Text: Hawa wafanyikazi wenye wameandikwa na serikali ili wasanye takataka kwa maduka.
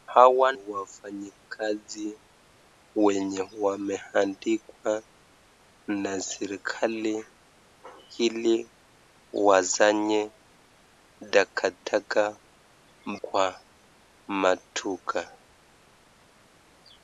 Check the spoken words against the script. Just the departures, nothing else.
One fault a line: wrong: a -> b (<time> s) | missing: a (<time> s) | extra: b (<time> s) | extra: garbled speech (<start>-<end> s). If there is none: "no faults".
no faults